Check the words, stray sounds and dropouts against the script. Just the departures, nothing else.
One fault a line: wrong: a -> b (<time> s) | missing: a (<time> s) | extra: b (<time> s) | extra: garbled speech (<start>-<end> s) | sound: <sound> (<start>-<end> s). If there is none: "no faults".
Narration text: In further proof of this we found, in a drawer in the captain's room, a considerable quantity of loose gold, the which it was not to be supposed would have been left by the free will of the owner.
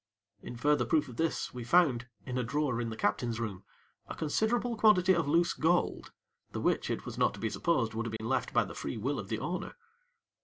sound: dropout (8.2-8.2 s)